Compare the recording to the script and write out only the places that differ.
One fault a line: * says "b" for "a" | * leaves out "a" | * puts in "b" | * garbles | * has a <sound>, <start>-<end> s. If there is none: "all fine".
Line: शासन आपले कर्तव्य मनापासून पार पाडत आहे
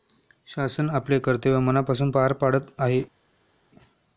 all fine